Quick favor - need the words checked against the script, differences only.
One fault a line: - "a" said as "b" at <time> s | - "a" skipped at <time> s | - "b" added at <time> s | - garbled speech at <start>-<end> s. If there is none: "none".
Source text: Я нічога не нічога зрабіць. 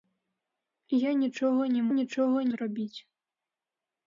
none